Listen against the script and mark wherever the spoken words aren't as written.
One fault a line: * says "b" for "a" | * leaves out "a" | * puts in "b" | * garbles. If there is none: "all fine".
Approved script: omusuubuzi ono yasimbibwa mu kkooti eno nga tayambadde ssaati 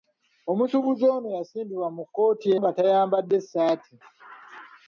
* leaves out "eno"